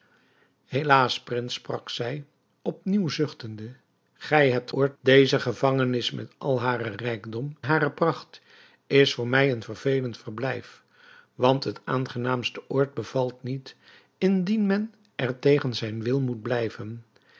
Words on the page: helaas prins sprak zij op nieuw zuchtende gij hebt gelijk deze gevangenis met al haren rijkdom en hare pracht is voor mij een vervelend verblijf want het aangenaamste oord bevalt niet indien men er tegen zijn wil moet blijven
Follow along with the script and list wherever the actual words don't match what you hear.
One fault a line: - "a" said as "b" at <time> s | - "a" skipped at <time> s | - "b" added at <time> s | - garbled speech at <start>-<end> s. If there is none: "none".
- "gelijk" said as "oord" at 4.7 s
- "en" skipped at 7.6 s